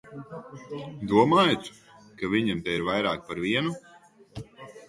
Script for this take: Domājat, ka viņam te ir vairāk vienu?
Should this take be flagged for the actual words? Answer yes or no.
yes